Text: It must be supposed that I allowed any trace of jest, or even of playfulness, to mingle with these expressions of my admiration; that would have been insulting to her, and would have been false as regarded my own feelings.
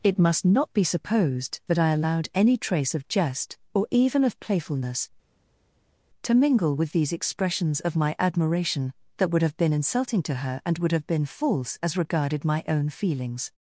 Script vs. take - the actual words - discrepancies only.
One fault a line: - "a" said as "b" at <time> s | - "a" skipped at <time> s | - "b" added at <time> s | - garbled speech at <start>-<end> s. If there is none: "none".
- "not" added at 0.4 s